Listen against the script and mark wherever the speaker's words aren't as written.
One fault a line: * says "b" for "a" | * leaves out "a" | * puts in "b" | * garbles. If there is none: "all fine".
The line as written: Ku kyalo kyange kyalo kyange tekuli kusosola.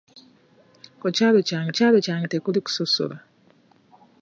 all fine